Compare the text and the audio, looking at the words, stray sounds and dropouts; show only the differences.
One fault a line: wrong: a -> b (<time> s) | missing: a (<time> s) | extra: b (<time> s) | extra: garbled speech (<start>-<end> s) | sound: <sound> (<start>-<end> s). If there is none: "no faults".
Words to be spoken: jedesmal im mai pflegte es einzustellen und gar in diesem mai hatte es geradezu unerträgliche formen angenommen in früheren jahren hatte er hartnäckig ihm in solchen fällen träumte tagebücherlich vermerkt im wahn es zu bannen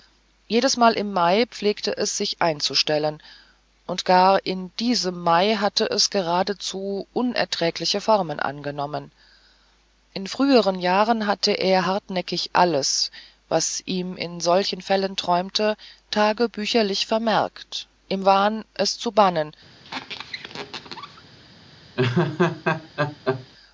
extra: sich (2.2 s)
extra: alles was (12.5 s)
sound: squeak (19.8-21.2 s)
sound: laugh (22.0-23.5 s)